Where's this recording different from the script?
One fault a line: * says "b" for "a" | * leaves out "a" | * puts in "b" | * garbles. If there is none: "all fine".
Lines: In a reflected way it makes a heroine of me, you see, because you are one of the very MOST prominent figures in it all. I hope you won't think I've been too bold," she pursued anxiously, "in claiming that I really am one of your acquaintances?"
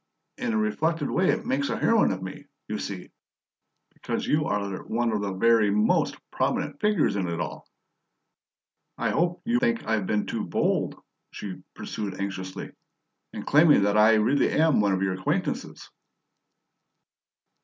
* leaves out "won't"